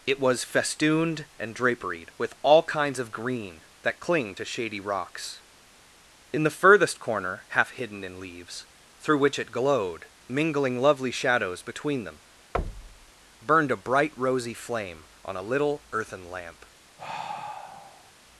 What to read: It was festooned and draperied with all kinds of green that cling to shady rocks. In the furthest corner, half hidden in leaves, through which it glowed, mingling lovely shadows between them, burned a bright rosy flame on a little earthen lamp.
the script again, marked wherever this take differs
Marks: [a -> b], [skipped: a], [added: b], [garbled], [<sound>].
It was festooned and draperied with all kinds of green that cling to shady rocks. In the furthest corner, half hidden in leaves, through which it glowed, mingling lovely shadows between them, [thud] burned a bright rosy flame on a little earthen lamp. [sigh]